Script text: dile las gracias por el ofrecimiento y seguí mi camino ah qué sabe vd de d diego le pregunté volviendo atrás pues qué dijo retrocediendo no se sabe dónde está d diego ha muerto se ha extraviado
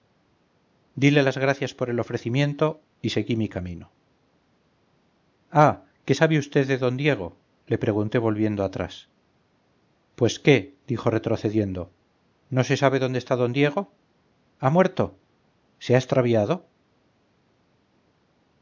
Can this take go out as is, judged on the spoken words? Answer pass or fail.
pass